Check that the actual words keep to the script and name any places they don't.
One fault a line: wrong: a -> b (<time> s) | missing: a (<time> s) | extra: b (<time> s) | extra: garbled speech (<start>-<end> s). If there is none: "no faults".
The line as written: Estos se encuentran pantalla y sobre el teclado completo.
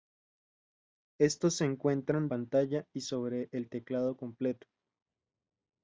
no faults